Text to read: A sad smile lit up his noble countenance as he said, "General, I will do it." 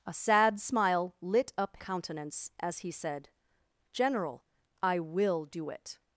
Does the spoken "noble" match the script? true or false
false